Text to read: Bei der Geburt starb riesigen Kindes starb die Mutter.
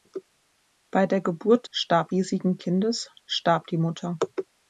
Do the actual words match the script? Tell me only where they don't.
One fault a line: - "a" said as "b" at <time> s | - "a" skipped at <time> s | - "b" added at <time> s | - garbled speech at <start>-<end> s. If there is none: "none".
none